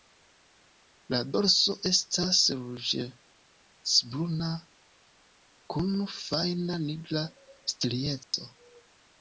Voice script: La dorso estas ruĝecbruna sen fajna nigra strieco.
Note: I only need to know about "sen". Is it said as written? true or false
false